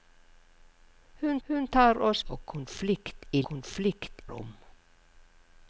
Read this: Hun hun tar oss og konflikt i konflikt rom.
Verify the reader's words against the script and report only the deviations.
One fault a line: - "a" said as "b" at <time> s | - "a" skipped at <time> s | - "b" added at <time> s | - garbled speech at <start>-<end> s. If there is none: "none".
none